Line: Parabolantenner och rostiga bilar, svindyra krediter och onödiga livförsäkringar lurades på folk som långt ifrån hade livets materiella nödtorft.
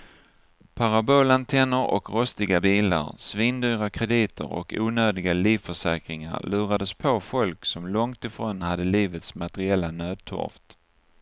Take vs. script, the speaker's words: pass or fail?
pass